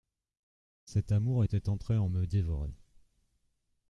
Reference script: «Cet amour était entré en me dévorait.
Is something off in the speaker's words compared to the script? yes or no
no